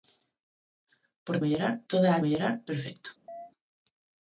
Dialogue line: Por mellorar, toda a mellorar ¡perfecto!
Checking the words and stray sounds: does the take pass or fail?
fail